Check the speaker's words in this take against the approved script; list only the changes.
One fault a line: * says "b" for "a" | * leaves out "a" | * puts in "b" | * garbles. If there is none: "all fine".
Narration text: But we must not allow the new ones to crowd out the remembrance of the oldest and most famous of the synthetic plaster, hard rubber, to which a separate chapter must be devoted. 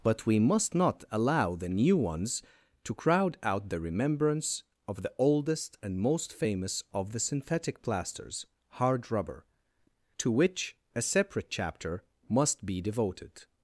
* says "plasters" for "plaster"